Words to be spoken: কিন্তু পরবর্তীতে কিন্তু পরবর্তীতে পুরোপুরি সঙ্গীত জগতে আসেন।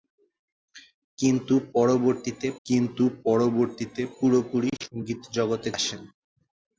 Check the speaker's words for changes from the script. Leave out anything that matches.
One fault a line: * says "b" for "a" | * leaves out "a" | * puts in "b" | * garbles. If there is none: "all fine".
all fine